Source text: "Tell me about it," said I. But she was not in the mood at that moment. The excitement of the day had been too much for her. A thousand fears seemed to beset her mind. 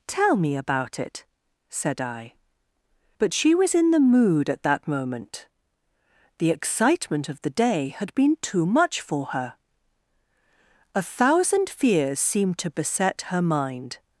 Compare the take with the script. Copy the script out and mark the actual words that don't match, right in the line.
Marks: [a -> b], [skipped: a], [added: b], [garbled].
"Tell me about it," said I. But she was [skipped: not] in the mood at that moment. The excitement of the day had been too much for her. A thousand fears seemed to beset her mind.